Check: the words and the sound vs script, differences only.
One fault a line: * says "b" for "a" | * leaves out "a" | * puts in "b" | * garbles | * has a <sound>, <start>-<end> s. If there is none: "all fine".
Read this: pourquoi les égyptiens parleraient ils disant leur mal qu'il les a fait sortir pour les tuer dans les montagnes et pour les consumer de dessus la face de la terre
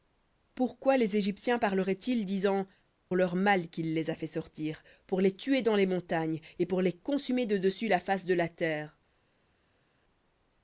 all fine